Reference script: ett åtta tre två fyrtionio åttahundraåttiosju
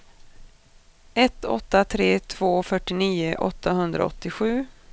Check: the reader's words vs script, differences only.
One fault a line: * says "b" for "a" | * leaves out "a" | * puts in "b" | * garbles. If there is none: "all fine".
all fine